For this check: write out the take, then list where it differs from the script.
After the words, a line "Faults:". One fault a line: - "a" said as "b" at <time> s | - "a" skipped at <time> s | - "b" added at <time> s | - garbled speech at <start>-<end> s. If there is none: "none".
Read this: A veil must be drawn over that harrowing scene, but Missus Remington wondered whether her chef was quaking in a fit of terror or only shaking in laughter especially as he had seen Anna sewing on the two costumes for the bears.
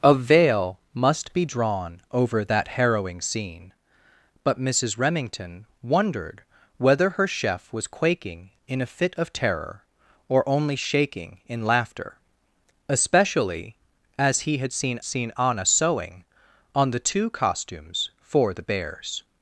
A veil must be drawn over that harrowing scene, but Missus Remington wondered whether her chef was quaking in a fit of terror or only shaking in laughter especially as he had seen seen Anna sewing on the two costumes for the bears.
Faults:
- "seen" added at 15.0 s